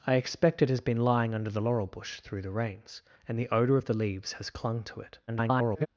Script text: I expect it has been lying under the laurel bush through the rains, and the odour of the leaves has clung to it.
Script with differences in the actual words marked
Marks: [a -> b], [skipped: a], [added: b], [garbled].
I expect it has been lying under the laurel bush through the rains, and the odour of the leaves has clung to it. [garbled]